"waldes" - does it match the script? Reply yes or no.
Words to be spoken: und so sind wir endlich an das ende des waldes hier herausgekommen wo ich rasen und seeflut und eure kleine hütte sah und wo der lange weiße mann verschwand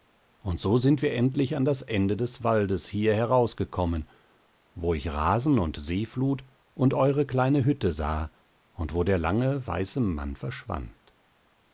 yes